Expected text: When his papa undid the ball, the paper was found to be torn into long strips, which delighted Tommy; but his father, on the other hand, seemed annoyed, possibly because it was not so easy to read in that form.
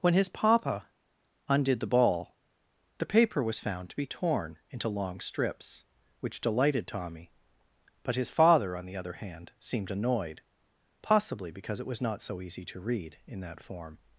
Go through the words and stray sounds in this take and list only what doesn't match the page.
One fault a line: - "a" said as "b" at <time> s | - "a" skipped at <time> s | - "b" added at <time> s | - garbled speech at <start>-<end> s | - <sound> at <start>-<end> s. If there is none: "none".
none